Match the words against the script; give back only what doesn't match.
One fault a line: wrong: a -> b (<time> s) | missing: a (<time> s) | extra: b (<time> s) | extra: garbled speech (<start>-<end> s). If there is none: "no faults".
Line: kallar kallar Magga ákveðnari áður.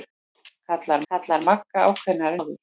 no faults